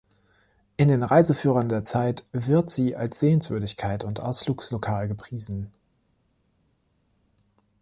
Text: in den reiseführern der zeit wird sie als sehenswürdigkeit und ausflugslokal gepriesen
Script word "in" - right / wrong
right